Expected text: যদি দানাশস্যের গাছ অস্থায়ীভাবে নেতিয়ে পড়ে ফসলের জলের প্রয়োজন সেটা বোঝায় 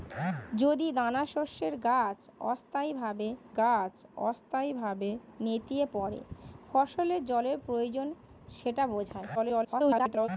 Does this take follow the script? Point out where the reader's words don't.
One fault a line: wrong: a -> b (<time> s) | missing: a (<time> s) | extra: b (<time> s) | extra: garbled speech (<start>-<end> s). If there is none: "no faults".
extra: গাছ অস্থায়ীভাবে (3.5 s)
extra: garbled speech (9.3-10.3 s)